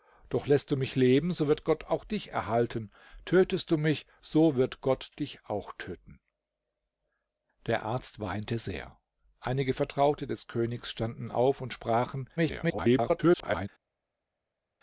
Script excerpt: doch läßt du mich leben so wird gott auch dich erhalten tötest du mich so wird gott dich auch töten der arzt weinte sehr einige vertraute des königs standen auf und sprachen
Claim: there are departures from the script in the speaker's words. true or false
true